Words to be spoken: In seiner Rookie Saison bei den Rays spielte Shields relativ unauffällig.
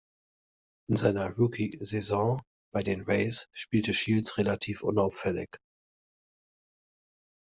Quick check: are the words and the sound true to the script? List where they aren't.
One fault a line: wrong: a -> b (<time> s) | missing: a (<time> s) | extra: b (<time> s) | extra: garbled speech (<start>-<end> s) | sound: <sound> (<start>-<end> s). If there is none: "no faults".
no faults